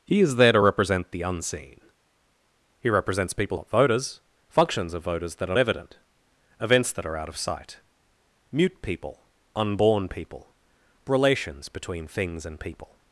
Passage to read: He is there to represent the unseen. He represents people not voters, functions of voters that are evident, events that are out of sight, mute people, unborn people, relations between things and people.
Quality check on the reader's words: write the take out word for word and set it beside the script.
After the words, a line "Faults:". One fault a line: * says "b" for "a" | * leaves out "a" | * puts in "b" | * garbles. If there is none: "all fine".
He is there to represent the unseen. He represents people not voters, functions of voters that are evident, events that are out of sight, mute people, unborn people, relations between things and people.
Faults:
all fine